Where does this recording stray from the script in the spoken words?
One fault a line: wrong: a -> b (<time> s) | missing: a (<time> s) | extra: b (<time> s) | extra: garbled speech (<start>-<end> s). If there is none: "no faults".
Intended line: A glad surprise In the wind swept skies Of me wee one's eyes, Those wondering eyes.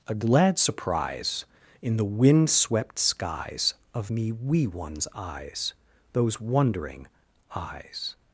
no faults